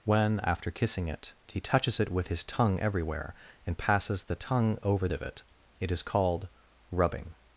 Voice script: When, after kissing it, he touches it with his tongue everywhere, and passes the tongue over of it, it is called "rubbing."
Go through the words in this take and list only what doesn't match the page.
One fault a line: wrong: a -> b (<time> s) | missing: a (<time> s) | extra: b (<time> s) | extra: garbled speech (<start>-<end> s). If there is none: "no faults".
no faults